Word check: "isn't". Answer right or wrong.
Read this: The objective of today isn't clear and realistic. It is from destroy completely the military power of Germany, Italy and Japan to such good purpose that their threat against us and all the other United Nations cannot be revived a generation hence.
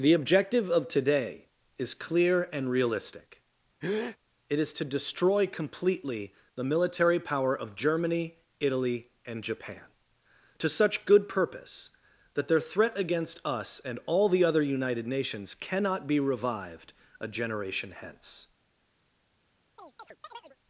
wrong